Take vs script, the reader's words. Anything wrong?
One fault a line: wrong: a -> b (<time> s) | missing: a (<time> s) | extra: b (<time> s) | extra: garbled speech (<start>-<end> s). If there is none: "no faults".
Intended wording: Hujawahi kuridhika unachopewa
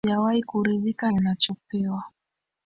no faults